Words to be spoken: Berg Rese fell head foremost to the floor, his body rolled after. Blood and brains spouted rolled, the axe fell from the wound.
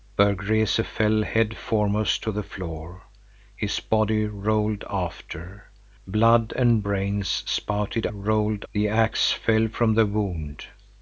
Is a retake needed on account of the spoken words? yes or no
no